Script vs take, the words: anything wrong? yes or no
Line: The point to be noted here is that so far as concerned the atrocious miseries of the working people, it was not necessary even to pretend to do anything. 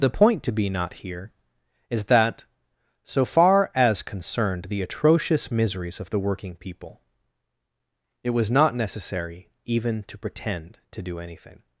yes